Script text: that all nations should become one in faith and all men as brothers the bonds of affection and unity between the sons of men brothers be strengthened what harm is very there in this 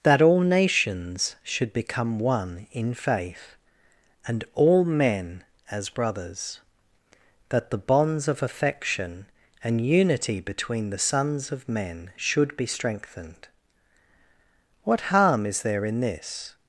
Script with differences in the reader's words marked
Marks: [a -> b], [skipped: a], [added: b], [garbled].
that all nations should become one in faith and all men as brothers [added: that] the bonds of affection and unity between the sons of men [brothers -> should] be strengthened what harm is [skipped: very] there in this